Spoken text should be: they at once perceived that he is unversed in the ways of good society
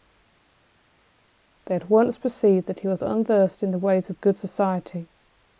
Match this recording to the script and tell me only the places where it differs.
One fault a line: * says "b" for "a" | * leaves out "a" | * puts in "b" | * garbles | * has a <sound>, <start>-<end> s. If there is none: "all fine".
* says "was" for "is"